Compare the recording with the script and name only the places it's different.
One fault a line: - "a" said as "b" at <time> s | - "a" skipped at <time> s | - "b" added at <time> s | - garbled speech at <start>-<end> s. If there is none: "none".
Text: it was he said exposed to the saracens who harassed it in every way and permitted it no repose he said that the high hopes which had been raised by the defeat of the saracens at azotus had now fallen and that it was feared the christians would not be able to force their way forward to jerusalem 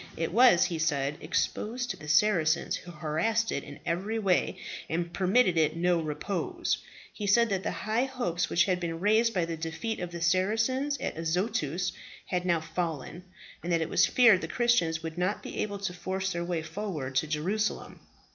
none